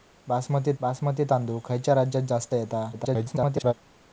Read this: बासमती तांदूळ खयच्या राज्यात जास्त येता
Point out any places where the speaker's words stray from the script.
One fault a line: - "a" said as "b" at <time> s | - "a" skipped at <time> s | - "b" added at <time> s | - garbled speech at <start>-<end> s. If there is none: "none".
- "बासमती" added at 0.8 s
- garbled speech at 2.9-3.7 s